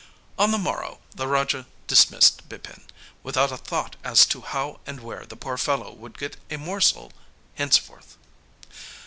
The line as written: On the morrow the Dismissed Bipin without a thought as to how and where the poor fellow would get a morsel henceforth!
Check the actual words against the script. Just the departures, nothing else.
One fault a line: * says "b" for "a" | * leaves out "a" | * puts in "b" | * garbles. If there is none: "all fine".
* puts in "Raja"